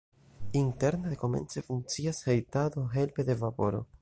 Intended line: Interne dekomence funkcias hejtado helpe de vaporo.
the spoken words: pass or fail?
pass